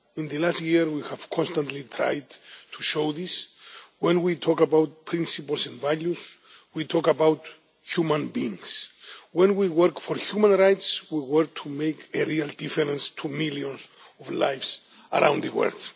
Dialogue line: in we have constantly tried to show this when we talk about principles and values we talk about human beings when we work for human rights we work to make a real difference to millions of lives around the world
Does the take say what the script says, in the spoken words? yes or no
no